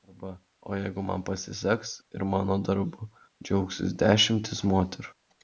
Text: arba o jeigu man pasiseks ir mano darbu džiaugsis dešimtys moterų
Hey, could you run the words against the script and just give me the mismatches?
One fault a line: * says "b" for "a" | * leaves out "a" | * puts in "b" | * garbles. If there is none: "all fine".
all fine